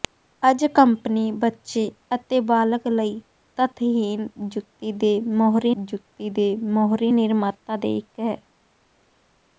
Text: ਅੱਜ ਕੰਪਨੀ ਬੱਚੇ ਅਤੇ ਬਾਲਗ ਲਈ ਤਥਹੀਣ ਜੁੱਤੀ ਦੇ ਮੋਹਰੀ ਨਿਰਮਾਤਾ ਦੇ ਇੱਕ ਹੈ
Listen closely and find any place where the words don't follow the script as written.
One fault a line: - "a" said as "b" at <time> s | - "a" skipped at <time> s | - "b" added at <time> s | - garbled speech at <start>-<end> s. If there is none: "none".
- "ਜੁੱਤੀ ਦੇ ਮੋਹਰੀ" added at 5.8 s